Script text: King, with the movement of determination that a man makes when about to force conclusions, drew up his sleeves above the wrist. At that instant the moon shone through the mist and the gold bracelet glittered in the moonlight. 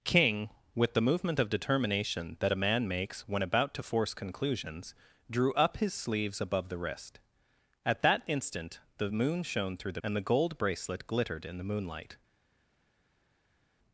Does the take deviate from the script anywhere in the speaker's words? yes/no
yes